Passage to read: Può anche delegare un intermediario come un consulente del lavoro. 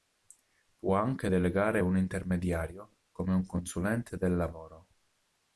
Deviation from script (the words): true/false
false